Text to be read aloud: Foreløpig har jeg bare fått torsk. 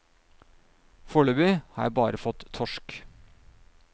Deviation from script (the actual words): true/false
false